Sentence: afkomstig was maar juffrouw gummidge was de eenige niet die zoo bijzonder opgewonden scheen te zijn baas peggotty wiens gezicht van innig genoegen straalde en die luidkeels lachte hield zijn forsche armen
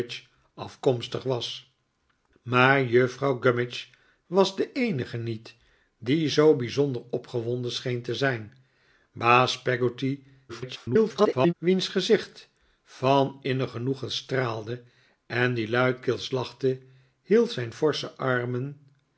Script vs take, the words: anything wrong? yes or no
yes